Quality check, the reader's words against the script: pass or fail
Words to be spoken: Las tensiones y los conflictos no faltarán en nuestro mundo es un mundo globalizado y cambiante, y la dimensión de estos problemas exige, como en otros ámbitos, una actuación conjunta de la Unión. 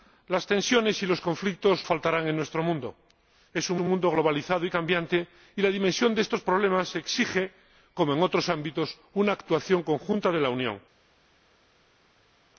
fail